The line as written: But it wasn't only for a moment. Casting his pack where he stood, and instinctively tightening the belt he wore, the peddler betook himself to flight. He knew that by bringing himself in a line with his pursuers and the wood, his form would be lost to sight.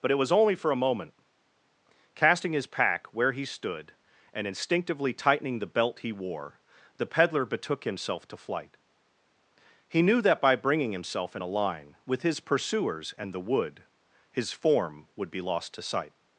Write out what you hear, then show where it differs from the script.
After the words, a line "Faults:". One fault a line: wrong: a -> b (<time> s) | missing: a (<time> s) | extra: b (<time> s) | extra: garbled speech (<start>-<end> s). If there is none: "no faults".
But it was only for a moment. Casting his pack where he stood, and instinctively tightening the belt he wore, the peddler betook himself to flight. He knew that by bringing himself in a line with his pursuers and the wood, his form would be lost to sight.
Faults:
wrong: wasn't -> was (0.2 s)